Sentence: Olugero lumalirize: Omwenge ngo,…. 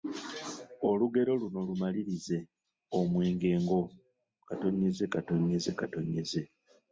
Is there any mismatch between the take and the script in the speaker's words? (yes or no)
yes